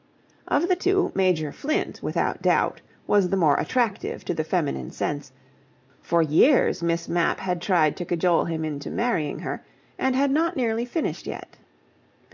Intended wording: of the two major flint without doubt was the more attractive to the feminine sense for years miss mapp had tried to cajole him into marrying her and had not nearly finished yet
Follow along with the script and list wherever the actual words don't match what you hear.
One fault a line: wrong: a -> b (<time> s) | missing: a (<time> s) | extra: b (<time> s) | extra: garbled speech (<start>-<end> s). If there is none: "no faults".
no faults